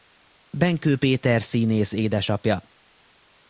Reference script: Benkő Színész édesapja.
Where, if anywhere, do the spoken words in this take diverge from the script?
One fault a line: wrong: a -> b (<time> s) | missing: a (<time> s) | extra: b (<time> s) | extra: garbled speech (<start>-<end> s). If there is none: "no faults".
extra: Péter (1.0 s)